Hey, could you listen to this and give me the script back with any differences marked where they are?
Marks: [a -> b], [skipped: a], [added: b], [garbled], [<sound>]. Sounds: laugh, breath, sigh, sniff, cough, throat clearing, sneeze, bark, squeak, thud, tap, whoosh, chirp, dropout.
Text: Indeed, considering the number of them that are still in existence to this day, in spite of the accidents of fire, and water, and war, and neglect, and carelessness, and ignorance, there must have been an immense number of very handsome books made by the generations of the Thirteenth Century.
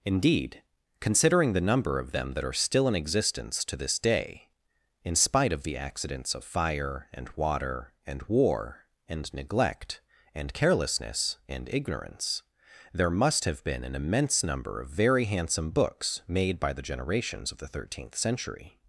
Indeed, considering the number of them that are still in existence to this day, in spite of the accidents of fire, and water, and war, and neglect, and carelessness, and ignorance, there must have been an immense number of very handsome books made by the generations of the Thirteenth Century.